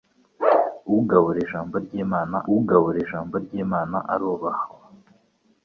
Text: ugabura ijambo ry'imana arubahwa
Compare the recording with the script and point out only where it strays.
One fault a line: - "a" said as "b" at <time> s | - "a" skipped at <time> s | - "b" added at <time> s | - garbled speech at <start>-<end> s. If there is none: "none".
- "ugabura ijambo ry'imana" added at 2.6 s